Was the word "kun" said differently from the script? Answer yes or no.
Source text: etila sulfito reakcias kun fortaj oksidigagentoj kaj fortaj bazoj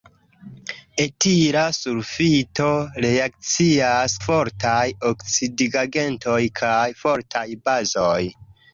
yes